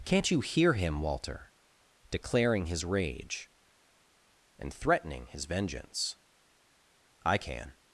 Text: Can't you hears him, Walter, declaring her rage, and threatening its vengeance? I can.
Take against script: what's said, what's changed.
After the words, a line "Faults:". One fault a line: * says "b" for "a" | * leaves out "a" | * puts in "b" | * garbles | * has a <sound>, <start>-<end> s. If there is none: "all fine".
Can't you hear him, Walter, declaring his rage, and threatening his vengeance? I can.
Faults:
* says "hear" for "hears"
* says "his" for "her"
* says "his" for "its"